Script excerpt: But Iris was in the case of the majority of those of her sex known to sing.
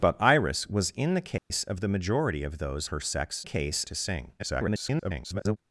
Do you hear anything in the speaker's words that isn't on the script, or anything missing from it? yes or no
yes